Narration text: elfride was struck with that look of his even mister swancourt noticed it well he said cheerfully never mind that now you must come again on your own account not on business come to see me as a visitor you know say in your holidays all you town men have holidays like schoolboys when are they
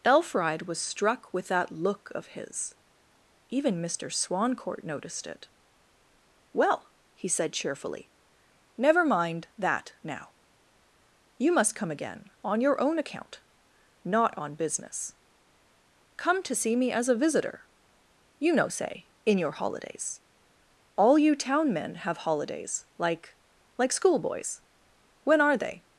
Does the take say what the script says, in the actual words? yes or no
no